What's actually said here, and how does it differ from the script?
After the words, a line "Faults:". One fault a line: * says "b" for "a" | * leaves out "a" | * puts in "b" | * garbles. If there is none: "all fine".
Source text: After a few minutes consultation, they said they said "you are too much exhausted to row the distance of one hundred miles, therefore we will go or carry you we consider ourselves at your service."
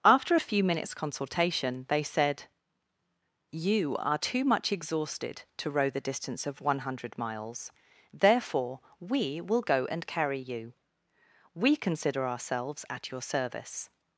After a few minutes consultation, they said "you are too much exhausted to row the distance of one hundred miles, therefore we will go and carry you we consider ourselves at your service."
Faults:
* leaves out "they said"
* says "and" for "or"